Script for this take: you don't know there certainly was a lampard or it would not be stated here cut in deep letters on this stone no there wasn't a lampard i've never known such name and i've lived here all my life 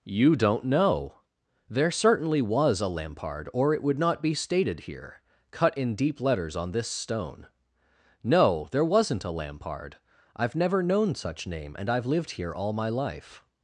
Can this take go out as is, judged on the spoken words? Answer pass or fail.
pass